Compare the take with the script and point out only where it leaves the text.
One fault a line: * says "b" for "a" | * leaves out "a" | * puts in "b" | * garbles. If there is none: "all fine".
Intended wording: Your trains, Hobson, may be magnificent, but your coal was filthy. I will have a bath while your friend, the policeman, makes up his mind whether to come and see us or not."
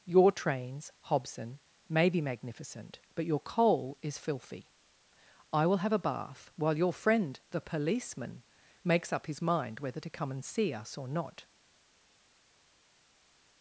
* says "is" for "was"